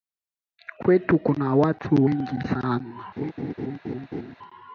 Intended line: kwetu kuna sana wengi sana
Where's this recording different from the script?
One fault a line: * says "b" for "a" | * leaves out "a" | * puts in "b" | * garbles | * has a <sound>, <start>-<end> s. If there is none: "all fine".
* says "watu" for "sana"
* has a laugh, 3.2-4.4 s